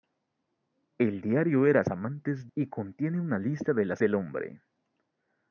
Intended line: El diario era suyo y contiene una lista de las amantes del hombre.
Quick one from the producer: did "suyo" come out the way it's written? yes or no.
no